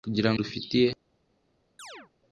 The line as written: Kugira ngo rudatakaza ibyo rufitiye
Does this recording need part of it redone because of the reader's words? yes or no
yes